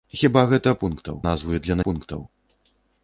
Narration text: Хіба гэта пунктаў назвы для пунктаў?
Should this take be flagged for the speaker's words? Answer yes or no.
no